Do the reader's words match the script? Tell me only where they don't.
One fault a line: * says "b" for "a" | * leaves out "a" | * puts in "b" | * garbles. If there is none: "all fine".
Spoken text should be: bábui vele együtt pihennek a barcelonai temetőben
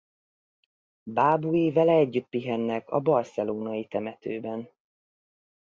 all fine